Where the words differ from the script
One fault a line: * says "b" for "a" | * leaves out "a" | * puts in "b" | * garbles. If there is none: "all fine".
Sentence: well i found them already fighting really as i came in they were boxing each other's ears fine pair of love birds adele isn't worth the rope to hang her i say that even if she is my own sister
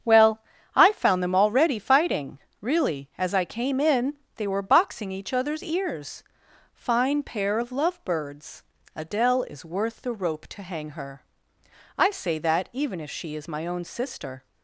* says "is" for "isn't"